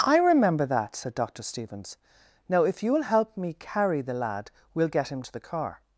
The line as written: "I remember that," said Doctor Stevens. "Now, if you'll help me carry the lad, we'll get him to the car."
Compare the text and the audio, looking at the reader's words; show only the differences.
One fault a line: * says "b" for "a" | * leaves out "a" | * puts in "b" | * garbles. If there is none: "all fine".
all fine